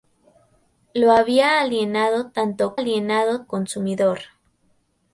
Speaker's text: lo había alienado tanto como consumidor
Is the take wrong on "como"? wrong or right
wrong